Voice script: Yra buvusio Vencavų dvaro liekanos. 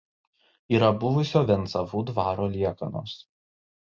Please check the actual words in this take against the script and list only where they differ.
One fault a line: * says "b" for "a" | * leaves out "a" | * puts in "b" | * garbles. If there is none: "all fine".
all fine